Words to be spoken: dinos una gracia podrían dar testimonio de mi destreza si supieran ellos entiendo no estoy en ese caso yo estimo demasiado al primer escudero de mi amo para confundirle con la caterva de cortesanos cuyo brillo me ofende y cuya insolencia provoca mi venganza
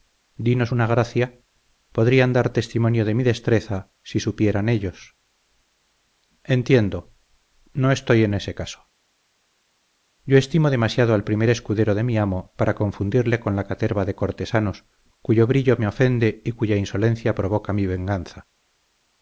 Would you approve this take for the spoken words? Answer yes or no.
yes